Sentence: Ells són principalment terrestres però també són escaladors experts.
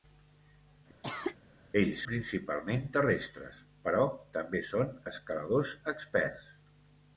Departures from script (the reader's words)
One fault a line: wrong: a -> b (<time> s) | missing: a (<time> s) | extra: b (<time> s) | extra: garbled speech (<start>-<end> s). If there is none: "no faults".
missing: són (2.0 s)